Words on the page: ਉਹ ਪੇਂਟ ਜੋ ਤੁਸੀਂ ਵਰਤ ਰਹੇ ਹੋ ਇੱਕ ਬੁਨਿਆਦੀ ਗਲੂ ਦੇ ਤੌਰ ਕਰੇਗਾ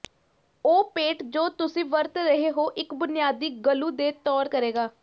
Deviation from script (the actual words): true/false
false